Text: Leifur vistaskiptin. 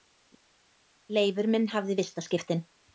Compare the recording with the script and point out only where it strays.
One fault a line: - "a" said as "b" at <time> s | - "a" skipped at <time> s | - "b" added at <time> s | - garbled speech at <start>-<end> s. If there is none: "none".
- "minn hafði" added at 1.6 s